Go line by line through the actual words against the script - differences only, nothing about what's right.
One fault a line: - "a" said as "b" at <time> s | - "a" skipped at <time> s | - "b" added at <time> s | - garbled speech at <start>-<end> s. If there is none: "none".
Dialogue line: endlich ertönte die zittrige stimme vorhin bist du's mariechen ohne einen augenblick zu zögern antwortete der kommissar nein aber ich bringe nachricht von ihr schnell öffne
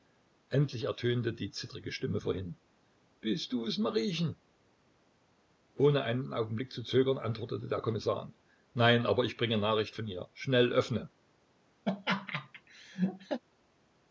none